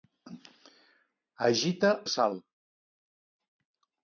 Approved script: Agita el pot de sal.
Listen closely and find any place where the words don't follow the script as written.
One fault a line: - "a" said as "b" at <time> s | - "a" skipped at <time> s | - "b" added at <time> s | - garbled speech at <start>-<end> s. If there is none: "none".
- "el pot" skipped at 1.9 s